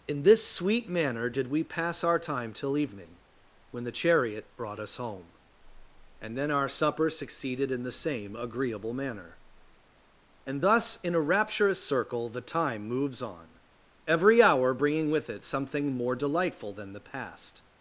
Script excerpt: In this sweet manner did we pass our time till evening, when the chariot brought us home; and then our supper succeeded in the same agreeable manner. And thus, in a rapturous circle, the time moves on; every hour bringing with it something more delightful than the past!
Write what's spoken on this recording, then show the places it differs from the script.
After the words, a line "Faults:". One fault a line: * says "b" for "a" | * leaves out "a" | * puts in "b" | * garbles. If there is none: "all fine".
In this sweet manner did we pass our time till evening, when the chariot brought us home; and then our supper succeeded in the same agreeable manner. And thus, in a rapturous circle, the time moves on; every hour bringing with it something more delightful than the past!
Faults:
all fine